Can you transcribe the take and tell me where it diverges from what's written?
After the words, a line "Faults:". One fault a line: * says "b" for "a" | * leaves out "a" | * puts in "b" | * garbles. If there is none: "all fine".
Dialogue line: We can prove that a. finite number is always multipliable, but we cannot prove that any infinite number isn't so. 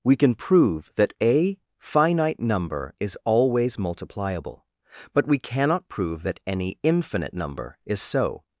We can prove that a. finite number is always multipliable, but we cannot prove that any infinite number is so.
Faults:
* says "is" for "isn't"